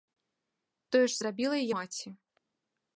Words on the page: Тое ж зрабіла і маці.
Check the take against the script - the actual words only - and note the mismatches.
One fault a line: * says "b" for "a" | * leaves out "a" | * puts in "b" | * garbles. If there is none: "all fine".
all fine